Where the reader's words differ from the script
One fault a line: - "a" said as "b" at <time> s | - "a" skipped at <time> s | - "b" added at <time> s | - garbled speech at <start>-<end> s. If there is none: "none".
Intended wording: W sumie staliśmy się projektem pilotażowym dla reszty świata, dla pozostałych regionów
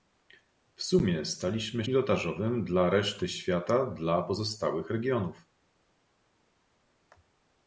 - "się projektem" skipped at 1.9 s